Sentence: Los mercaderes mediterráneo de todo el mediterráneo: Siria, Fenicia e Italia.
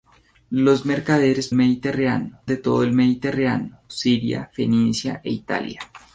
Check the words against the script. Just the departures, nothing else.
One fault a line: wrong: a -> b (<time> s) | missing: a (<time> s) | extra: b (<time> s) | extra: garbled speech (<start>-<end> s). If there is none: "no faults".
no faults